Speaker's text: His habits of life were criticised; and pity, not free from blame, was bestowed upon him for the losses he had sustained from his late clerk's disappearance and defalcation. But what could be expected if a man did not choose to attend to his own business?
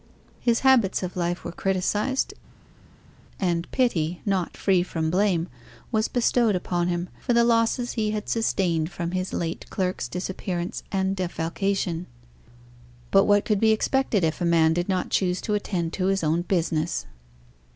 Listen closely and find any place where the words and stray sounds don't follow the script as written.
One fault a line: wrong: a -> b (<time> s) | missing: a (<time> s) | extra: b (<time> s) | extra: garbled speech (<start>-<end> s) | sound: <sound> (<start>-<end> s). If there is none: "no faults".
no faults